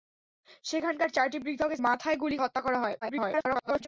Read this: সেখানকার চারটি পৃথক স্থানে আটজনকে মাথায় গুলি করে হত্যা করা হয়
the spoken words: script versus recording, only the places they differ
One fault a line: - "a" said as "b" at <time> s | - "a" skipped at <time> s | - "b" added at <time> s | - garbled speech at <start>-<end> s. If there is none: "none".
- "স্থানে আটজনকে" skipped at 1.7 s
- "করে" skipped at 2.4 s
- garbled speech at 3.0-3.9 s